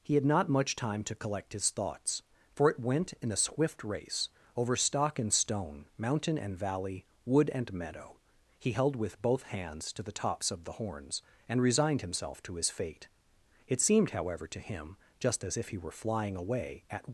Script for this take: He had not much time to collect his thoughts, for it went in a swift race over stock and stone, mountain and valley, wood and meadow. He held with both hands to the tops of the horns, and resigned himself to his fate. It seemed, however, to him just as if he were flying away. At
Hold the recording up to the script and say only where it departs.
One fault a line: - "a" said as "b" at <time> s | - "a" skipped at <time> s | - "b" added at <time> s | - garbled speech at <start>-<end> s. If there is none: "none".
none